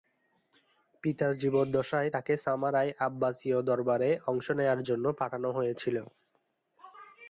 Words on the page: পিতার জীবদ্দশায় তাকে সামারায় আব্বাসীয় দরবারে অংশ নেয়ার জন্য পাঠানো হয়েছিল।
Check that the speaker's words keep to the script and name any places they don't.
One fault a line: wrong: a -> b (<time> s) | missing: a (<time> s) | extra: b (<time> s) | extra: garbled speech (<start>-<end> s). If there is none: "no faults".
no faults